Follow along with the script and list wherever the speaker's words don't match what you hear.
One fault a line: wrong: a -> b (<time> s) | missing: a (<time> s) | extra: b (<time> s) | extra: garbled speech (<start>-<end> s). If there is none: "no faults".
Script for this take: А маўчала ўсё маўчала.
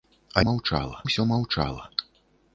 no faults